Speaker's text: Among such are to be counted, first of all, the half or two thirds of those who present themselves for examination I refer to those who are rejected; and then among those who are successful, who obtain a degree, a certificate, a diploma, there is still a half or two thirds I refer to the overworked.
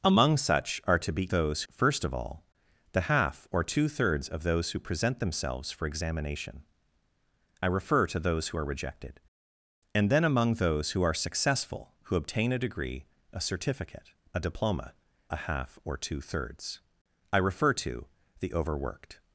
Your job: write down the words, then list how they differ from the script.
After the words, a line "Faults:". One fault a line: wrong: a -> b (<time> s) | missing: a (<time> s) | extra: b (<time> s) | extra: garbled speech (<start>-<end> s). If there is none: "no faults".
Among such are to be those, first of all, the half or two thirds of those who present themselves for examination I refer to those who are rejected; and then among those who are successful, who obtain a degree, a certificate, a diploma, a half or two thirds I refer to the overworked.
Faults:
wrong: counted -> those (1.3 s)
missing: there is still (14.9 s)